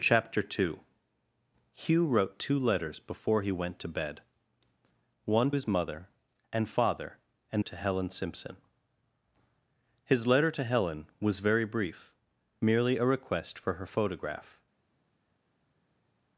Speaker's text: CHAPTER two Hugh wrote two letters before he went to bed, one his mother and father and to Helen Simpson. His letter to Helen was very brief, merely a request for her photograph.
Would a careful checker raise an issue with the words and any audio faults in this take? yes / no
no